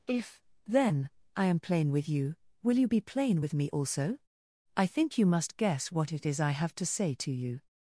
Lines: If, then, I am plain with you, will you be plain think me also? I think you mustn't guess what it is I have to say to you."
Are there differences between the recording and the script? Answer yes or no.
yes